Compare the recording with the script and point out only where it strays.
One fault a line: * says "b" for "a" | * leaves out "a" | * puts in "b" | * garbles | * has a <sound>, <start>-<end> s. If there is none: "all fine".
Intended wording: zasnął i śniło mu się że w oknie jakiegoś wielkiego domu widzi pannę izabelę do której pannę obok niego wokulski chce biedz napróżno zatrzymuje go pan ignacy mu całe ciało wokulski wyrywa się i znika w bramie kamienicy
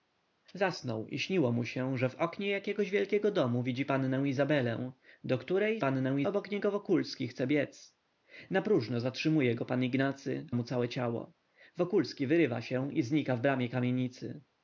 all fine